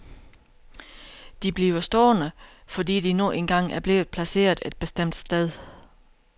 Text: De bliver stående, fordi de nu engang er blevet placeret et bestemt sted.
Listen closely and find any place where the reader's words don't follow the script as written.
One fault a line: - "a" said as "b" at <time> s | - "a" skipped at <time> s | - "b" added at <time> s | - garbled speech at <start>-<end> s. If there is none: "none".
none